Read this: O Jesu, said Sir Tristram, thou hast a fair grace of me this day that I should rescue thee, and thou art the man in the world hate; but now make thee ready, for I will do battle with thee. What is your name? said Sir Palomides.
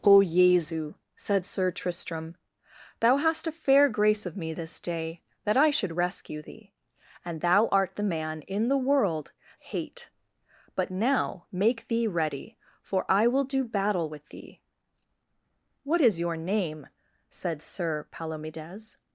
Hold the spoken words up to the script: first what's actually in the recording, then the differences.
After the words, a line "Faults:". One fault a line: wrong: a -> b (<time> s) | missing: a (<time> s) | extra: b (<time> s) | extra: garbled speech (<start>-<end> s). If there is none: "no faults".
O Jesu, said Sir Tristram, thou hast a fair grace of me this day that I should rescue thee, and thou art the man in the world hate; but now make thee ready, for I will do battle with thee. What is your name? said Sir Palomides.
Faults:
no faults